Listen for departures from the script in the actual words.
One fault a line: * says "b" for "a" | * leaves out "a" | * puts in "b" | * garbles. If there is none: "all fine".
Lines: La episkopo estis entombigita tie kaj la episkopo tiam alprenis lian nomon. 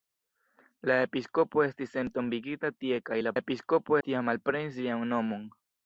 all fine